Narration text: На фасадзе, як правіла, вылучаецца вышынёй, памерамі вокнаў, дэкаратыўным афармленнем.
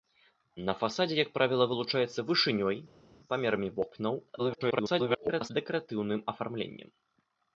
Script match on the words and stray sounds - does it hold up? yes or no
no